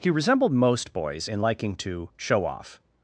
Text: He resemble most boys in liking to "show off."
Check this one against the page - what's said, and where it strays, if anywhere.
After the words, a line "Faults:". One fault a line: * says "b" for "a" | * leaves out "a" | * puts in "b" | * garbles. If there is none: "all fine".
He resembled most boys in liking to "show off."
Faults:
* says "resembled" for "resemble"